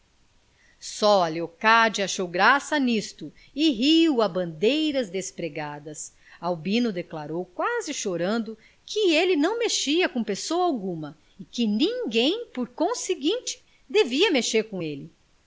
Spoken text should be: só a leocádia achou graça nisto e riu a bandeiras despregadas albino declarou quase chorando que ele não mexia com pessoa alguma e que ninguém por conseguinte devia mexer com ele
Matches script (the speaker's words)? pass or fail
pass